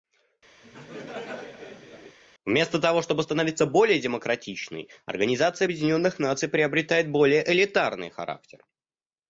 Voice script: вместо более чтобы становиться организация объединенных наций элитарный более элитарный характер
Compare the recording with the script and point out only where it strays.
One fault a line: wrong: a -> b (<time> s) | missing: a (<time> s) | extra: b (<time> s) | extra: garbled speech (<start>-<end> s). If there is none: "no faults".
wrong: более -> того (2.8 s)
extra: более демократичной (3.7 s)
wrong: элитарный -> приобретает (6.5 s)